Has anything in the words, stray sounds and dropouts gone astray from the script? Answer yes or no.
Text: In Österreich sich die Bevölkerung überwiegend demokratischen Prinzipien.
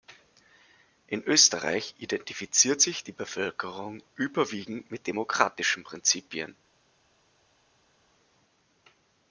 yes